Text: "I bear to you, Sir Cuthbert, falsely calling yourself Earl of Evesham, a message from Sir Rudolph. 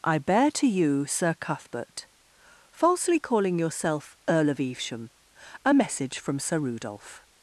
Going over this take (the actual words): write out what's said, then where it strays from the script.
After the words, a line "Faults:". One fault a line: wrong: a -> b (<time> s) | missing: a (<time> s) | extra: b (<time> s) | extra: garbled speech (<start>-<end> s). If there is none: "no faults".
"I bear to you, Sir Cuthbert, falsely calling yourself Earl of Evesham, a message from Sir Rudolph.
Faults:
no faults